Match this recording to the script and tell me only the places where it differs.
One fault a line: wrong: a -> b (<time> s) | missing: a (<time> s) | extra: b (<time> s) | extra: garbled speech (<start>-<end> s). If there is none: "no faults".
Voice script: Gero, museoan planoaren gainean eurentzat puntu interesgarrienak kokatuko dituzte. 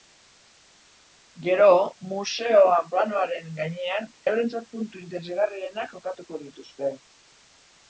no faults